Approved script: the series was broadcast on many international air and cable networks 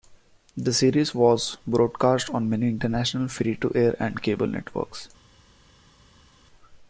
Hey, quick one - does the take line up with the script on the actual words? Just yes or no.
no